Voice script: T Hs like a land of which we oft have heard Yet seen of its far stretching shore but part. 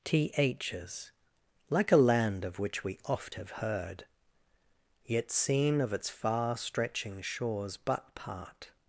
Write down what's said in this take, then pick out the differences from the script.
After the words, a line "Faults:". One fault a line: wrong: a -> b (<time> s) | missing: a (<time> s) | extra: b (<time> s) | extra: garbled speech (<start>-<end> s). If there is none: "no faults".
T Hs like a land of which we oft have heard Yet seen of its far stretching shores but part.
Faults:
wrong: shore -> shores (7.2 s)